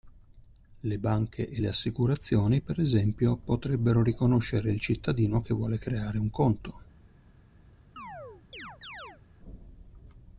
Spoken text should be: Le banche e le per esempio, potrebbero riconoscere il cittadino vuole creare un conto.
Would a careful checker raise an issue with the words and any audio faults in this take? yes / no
yes